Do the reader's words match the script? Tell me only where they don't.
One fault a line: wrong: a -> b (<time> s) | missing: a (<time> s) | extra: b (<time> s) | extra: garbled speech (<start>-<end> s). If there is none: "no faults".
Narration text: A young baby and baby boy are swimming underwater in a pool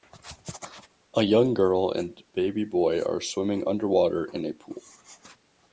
wrong: baby -> girl (1.5 s)